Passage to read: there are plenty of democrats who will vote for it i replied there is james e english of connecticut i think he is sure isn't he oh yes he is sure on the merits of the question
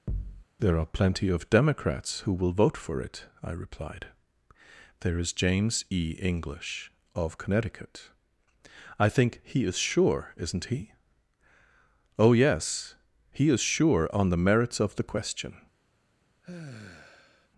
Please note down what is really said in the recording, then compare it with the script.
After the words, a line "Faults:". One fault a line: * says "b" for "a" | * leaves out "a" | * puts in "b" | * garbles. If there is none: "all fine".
there are plenty of democrats who will vote for it i replied there is james e english of connecticut i think he is sure isn't he oh yes he is sure on the merits of the question
Faults:
all fine